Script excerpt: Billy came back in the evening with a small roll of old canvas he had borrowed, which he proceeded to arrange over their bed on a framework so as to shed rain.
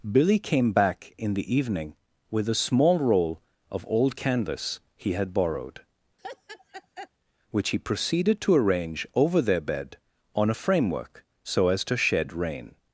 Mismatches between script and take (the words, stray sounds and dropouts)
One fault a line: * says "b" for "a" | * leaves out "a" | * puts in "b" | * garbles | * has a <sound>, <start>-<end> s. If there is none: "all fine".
* has a laugh, 6.2-7.1 s